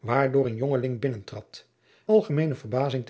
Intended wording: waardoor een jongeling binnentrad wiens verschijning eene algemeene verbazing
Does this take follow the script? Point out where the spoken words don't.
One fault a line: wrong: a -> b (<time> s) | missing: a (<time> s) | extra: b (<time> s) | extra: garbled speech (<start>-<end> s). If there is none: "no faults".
missing: wiens verschijning eene (1.7 s)